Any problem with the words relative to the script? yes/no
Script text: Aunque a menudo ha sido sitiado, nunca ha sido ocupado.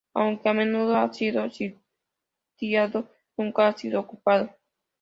no